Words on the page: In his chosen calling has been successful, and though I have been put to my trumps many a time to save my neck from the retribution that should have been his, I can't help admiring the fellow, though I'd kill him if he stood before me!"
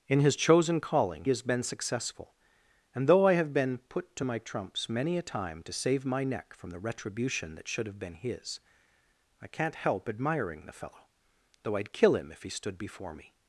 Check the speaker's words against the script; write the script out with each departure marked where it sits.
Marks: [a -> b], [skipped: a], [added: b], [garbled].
In his chosen calling has been successful, and though I have been put to my trumps many a time to save my neck from the retribution that should have been his, I can't help admiring the fellow, though I'd kill him if he stood before me!"